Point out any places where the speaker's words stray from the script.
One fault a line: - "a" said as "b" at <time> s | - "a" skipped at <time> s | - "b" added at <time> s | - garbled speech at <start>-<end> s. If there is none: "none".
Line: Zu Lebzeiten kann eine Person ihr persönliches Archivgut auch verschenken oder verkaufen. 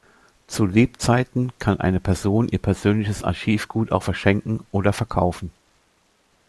none